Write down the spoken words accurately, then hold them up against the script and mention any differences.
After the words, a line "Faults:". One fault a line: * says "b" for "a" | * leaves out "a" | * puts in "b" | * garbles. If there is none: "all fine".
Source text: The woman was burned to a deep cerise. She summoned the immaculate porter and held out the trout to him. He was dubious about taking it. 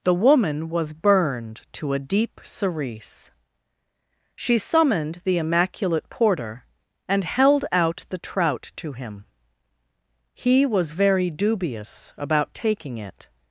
The woman was burned to a deep cerise. She summoned the immaculate porter and held out the trout to him. He was very dubious about taking it.
Faults:
* puts in "very"